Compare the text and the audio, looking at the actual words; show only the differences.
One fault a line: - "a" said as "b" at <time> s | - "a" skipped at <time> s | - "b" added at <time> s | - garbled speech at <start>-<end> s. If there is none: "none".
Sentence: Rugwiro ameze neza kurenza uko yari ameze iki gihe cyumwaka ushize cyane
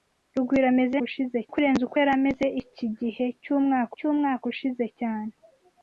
- "neza" said as "ushize" at 1.1 s
- "cyumwaka" added at 4.0 s